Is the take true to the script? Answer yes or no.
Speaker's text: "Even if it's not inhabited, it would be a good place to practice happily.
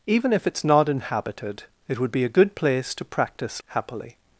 yes